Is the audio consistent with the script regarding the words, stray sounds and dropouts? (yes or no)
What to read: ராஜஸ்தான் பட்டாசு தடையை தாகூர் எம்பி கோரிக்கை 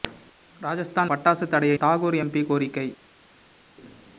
yes